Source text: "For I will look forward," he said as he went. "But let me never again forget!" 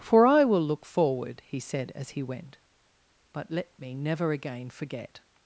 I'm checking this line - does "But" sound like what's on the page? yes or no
yes